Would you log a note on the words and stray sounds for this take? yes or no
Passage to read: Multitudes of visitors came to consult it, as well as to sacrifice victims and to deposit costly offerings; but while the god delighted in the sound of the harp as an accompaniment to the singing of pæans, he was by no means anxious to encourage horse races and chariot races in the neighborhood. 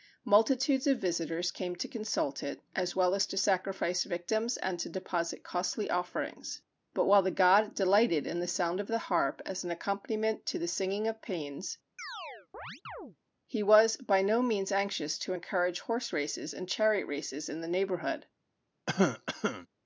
yes